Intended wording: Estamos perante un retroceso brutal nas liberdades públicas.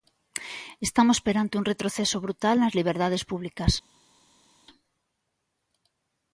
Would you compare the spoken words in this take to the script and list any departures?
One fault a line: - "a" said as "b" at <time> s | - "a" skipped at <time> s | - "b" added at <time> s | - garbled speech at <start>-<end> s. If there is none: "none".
none